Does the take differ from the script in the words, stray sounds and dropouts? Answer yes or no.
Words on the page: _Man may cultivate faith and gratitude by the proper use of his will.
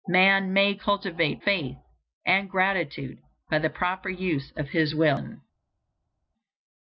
no